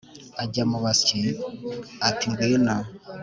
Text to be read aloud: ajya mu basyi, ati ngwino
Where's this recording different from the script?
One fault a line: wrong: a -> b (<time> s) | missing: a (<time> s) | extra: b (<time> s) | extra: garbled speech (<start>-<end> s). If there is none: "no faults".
no faults